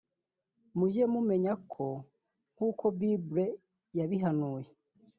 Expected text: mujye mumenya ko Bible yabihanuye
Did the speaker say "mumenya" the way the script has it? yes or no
yes